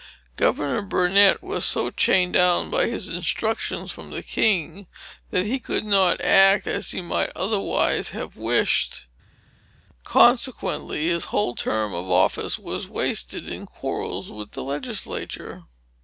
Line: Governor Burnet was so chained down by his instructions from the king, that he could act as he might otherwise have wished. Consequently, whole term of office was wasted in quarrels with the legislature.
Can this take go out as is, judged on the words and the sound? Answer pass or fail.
fail